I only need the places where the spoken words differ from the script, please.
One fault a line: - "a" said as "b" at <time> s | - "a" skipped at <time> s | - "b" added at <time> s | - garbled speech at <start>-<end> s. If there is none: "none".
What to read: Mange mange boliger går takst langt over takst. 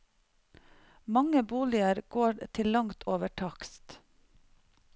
- "mange" skipped at 1.4 s
- "takst" said as "til" at 2.6 s